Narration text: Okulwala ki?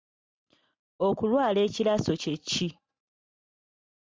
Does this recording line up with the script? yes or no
no